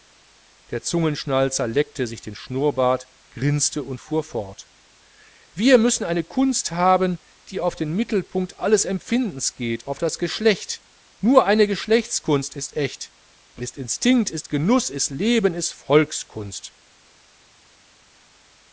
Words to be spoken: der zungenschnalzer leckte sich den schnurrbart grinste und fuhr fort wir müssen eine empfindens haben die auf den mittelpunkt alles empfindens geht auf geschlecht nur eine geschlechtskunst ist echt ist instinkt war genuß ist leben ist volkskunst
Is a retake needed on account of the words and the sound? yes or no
yes